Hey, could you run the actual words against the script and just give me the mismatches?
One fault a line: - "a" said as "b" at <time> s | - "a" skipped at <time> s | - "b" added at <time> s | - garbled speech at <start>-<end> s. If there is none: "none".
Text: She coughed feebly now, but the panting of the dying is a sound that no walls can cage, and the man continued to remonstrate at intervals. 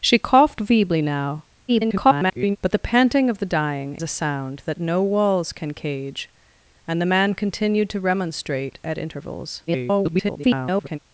- garbled speech at 1.7-2.6 s
- "is" skipped at 4.0 s
- garbled speech at 9.7-11.0 s